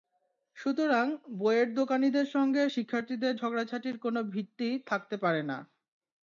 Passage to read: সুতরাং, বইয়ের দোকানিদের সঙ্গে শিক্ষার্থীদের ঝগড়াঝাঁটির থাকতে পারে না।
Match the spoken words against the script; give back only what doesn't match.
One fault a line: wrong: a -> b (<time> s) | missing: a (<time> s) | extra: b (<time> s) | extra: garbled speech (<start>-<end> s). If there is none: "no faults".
extra: কোনো ভিত্তি (4.0 s)